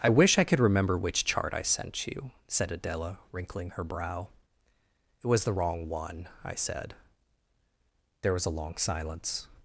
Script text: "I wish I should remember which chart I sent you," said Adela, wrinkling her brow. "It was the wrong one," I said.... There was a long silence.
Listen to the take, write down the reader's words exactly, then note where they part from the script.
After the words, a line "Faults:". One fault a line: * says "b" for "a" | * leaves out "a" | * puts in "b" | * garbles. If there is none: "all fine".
"I wish I could remember which chart I sent you," said Adela, wrinkling her brow. "It was the wrong one," I said.... There was a long silence.
Faults:
* says "could" for "should"